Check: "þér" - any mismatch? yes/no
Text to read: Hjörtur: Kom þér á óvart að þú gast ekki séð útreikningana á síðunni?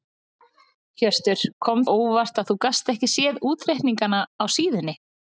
yes